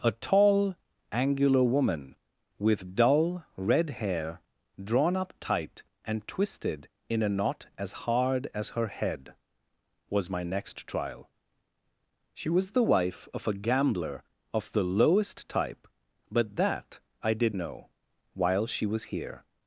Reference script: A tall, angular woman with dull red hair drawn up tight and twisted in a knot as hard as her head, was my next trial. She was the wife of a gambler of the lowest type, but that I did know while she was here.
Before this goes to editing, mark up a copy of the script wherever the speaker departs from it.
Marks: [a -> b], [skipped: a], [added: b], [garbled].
A tall, angular woman with dull red hair drawn up tight and twisted in a knot as hard as her head, was my next trial. She was the wife of a gambler of the lowest type, but that I did know while she was here.